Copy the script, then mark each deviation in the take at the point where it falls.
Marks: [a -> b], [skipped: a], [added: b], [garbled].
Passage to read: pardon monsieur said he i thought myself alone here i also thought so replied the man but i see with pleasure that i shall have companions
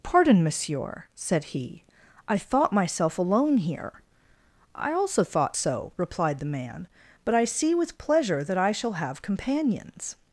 pardon monsieur said he i thought myself alone here i also thought so replied the man but i see with pleasure that i shall have companions